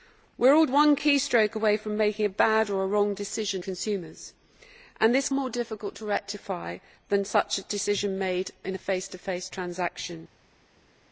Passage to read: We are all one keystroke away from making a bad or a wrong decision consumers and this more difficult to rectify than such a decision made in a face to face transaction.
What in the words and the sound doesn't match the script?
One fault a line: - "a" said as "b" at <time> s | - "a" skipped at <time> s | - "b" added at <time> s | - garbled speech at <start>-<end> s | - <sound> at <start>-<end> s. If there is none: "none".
none